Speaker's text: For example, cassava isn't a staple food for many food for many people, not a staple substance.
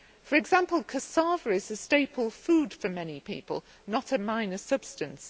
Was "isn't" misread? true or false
true